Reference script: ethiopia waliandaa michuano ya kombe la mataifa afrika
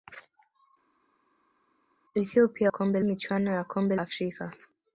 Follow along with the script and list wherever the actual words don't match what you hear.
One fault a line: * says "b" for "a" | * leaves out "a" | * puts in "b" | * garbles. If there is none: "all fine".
* says "kombe" for "waliandaa"
* leaves out "la mataifa"